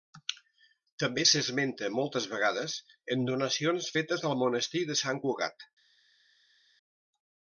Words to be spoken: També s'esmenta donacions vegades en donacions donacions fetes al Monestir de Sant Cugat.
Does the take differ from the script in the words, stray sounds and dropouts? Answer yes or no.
yes